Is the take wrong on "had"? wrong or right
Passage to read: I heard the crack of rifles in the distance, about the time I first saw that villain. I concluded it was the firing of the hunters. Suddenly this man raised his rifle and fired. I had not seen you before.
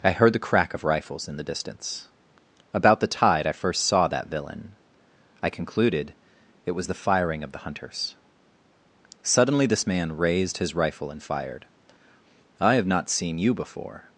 wrong